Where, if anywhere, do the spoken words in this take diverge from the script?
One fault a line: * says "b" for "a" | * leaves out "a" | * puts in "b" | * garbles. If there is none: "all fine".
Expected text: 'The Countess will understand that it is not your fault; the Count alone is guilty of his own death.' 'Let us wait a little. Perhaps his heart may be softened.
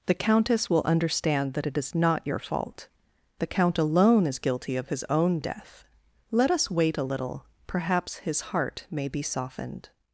all fine